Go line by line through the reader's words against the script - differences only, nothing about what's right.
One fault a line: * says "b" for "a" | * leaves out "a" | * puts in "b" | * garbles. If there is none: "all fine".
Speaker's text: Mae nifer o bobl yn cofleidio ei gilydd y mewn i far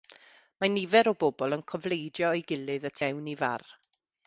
all fine